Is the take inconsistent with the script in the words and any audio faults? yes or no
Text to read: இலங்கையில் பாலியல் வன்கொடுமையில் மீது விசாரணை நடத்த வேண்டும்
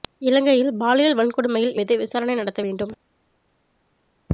no